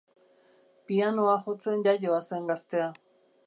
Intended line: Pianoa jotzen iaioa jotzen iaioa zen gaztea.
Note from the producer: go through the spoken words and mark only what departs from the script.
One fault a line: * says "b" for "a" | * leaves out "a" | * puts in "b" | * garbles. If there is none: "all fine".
* leaves out "jotzen iaioa"